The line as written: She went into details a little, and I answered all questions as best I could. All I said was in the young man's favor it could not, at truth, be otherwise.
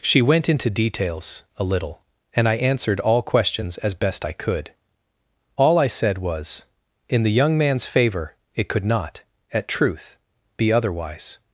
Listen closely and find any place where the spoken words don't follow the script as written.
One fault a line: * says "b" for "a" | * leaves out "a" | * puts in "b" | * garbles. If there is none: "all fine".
all fine